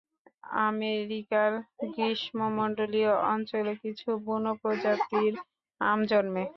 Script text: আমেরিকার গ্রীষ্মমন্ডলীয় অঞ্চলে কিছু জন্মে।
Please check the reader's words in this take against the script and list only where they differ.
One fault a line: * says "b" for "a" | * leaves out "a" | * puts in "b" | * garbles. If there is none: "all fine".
* puts in "বুনো প্রজাতির আম"